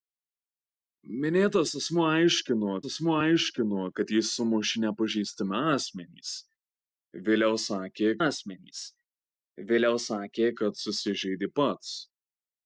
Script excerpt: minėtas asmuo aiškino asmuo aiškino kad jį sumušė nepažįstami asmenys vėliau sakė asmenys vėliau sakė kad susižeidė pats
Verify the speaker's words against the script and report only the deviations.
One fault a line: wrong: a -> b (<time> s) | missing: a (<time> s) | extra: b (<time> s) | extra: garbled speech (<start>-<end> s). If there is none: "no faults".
no faults